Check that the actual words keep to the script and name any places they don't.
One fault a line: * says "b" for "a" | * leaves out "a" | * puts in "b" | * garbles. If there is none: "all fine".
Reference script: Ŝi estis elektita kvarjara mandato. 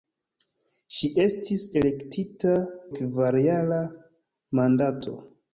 all fine